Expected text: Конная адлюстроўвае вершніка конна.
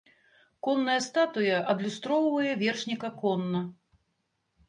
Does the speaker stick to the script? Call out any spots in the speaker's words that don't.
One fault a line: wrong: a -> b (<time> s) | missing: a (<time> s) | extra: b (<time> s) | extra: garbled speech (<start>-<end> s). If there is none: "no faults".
extra: статуя (1.1 s)